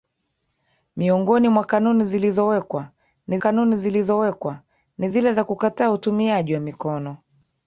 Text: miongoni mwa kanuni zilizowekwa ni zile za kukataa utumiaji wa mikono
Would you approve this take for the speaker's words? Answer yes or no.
no